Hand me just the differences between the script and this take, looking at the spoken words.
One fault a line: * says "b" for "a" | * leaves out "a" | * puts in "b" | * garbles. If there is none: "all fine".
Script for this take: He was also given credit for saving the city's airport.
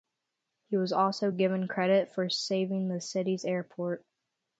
all fine